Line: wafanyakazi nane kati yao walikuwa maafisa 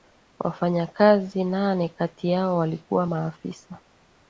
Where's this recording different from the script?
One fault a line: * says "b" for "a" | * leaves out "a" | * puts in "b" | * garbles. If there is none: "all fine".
all fine